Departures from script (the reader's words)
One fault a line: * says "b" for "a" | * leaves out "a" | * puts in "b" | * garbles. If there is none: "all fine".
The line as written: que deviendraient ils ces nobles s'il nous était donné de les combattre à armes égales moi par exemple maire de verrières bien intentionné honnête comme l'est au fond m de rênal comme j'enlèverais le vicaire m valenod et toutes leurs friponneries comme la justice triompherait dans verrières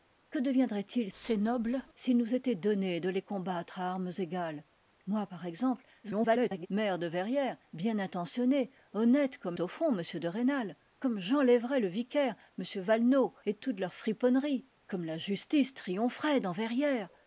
* garbles
* leaves out "l'est"